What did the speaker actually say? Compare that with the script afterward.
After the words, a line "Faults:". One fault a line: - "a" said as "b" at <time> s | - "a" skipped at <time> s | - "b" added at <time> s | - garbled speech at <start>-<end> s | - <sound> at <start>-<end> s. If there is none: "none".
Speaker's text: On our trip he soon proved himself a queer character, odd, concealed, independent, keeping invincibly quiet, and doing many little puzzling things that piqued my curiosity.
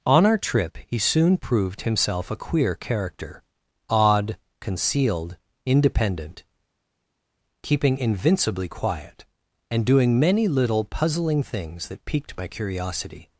On our trip he soon proved himself a queer character, odd, concealed, independent, keeping invincibly quiet, and doing many little puzzling things that piqued my curiosity.
Faults:
none